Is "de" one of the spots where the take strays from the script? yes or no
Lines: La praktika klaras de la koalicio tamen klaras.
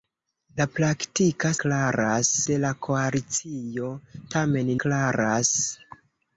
no